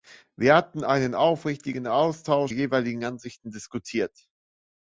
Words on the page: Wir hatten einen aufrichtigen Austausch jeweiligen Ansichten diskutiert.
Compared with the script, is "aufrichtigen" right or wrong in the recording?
right